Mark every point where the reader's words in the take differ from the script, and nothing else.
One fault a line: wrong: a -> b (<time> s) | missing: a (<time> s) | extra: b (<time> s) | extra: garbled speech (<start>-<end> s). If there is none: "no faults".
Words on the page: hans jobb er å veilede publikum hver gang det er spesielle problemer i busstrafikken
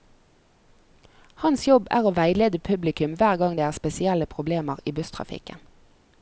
no faults